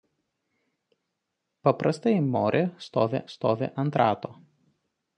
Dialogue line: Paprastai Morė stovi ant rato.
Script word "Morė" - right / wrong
right